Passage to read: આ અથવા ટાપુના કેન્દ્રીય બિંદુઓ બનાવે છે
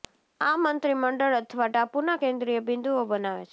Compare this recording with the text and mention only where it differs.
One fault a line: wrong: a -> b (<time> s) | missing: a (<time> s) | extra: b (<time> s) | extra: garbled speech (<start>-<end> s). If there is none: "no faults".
extra: મંત્રીમંડળ (0.6 s)